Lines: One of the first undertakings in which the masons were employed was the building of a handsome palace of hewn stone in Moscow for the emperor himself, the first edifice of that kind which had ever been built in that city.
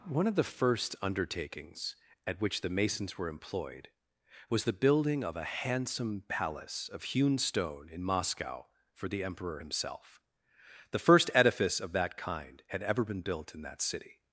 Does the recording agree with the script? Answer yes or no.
no